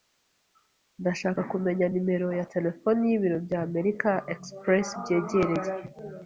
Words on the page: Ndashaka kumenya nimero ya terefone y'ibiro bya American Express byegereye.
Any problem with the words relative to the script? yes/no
no